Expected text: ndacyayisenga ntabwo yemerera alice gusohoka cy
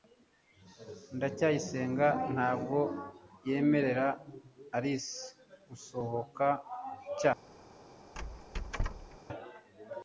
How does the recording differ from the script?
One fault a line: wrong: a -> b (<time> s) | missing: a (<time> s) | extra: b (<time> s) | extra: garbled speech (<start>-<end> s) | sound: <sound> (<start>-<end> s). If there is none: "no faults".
sound: squeak (8.1-9.2 s)